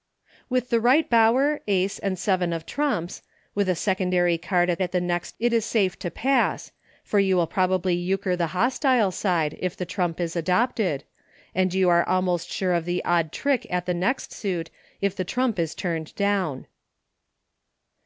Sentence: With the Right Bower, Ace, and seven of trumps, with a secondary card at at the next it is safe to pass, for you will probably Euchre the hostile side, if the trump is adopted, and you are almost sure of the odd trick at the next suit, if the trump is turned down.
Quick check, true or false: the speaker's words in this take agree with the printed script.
true